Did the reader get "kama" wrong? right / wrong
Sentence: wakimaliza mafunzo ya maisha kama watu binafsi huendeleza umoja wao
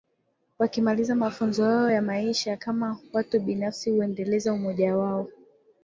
right